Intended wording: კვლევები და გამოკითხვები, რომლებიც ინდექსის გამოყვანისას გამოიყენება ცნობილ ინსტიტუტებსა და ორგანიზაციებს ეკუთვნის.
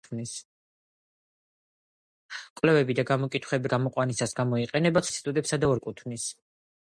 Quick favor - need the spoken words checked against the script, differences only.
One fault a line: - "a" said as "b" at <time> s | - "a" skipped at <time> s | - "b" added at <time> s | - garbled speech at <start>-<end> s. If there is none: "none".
- "რომლებიც ინდექსის" skipped at 3.7 s
- "ცნობილ" skipped at 5.0 s
- "ორგანიზაციებს" skipped at 5.7 s